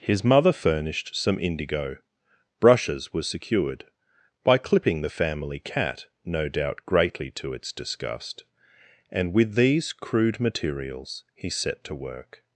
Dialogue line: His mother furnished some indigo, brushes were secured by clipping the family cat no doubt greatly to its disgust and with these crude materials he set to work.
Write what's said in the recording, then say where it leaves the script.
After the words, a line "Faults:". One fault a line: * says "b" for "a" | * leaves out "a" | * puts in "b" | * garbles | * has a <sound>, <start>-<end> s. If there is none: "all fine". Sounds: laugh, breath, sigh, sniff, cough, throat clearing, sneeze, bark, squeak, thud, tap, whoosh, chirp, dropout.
His mother furnished some indigo, brushes were secured by clipping the family cat no doubt greatly to its disgust and with these crude materials he set to work.
Faults:
all fine